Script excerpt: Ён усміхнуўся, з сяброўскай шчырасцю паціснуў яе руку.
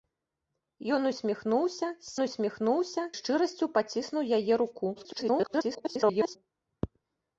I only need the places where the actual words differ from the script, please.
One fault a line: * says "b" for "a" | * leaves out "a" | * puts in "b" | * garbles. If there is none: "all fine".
* says "усміхнуўся" for "сяброўскай"
* garbles